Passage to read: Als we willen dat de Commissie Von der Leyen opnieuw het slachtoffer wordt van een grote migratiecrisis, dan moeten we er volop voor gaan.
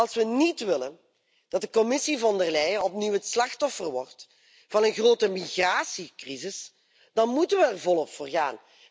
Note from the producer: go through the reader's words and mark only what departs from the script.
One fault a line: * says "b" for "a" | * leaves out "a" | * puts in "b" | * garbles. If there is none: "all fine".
* puts in "niet"